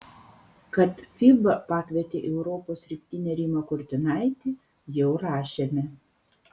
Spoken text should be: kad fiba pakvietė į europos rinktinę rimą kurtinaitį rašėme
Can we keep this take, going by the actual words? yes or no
no